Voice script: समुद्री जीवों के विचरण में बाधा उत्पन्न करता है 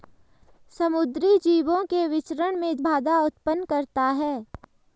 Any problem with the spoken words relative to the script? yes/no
no